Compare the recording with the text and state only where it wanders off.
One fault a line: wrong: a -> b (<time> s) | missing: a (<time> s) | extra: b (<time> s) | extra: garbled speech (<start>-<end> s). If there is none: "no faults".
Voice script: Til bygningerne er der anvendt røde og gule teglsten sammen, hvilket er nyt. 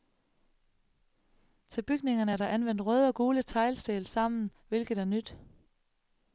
no faults